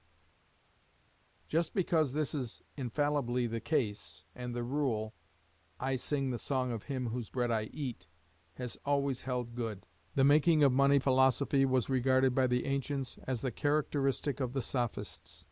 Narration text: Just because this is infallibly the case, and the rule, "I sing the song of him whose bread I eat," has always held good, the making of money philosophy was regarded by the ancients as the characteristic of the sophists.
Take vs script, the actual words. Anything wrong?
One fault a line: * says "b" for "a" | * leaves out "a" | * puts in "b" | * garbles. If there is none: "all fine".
all fine